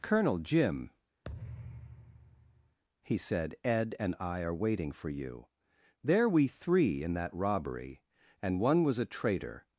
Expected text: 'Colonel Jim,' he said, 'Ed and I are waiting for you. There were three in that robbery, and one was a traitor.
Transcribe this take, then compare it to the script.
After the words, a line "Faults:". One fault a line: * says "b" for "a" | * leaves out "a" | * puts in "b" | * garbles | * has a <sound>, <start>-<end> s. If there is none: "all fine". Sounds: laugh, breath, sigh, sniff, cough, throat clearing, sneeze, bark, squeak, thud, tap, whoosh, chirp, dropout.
'Colonel Jim,' he said, 'Ed and I are waiting for you. There we three in that robbery, and one was a traitor.
Faults:
* has a thud, 1.2-2.8 s
* says "we" for "were"